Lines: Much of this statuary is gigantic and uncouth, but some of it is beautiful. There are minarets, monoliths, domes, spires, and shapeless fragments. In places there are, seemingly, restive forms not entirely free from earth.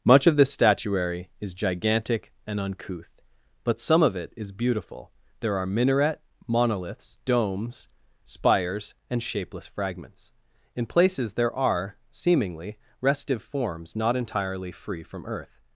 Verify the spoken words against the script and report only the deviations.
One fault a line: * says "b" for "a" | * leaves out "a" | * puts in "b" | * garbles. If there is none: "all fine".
* says "minaret" for "minarets"